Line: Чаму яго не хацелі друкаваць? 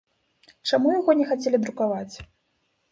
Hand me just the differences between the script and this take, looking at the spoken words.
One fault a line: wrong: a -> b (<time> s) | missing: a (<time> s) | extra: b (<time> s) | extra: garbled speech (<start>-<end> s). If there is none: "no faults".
no faults